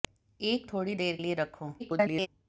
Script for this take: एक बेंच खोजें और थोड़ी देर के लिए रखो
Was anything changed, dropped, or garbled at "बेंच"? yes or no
yes